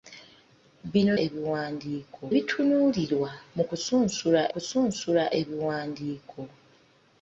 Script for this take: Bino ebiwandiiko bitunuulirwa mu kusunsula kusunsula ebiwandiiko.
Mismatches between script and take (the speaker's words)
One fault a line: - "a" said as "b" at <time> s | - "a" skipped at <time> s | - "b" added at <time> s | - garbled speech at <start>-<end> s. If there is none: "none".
none